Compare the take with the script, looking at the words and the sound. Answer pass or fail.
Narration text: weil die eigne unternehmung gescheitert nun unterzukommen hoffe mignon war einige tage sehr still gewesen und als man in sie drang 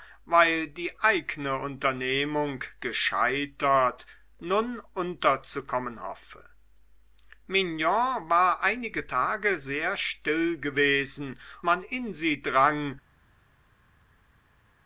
fail